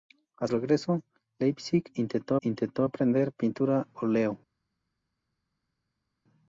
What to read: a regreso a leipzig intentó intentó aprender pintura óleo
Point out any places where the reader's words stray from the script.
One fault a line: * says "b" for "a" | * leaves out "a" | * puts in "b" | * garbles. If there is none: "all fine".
all fine